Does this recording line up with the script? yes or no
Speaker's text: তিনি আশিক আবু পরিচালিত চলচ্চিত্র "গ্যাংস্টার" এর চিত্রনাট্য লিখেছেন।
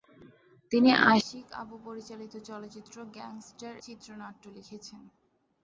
no